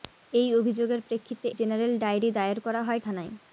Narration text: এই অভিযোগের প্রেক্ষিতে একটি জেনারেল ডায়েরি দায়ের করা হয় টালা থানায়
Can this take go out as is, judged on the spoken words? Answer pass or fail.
fail